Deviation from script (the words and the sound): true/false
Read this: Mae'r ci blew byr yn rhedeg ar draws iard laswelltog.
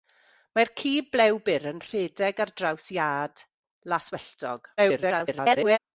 true